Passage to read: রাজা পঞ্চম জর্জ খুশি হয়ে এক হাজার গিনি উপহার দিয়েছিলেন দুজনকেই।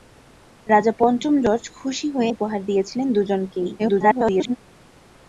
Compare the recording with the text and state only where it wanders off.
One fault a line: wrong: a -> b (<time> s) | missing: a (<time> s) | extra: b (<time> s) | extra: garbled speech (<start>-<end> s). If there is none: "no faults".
missing: এক হাজার গিনি (2.3 s)
extra: garbled speech (3.8-4.6 s)